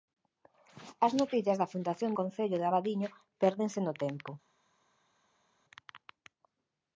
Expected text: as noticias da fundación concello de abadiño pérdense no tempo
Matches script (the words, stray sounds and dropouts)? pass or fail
pass